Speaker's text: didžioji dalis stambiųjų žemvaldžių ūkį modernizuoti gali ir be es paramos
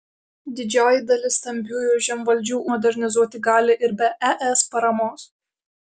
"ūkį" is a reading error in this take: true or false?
true